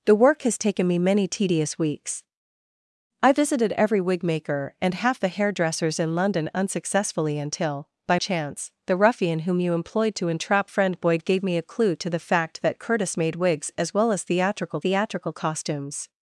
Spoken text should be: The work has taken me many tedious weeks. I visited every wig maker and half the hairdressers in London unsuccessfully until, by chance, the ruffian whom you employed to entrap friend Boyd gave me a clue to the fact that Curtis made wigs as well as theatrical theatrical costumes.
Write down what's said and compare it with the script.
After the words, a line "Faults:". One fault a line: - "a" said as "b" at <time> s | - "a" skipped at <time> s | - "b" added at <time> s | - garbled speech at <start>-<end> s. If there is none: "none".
The work has taken me many tedious weeks. I visited every wig maker and half the hairdressers in London unsuccessfully until, by chance, the ruffian whom you employed to entrap friend Boyd gave me a clue to the fact that Curtis made wigs as well as theatrical theatrical costumes.
Faults:
none